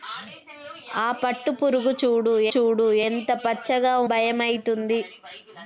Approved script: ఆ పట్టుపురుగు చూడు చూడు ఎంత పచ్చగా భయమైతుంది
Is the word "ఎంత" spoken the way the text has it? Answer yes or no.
yes